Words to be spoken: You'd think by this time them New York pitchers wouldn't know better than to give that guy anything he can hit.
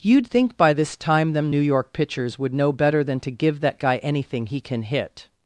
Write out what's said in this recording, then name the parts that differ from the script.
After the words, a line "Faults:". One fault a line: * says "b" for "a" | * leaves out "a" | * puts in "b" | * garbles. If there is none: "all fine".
You'd think by this time them New York pitchers would know better than to give that guy anything he can hit.
Faults:
* says "would" for "wouldn't"